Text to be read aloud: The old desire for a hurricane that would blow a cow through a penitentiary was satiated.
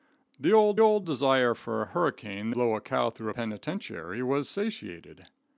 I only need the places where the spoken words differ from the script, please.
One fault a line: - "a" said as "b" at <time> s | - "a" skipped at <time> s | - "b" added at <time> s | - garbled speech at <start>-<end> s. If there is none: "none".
- "old" added at 0.8 s
- "that would" skipped at 2.5 s